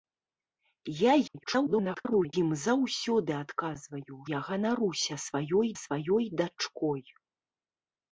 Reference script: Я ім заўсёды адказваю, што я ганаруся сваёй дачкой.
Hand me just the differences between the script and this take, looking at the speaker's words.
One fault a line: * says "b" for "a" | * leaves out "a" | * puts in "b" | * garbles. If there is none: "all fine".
* garbles
* leaves out "што"
* puts in "сваёй"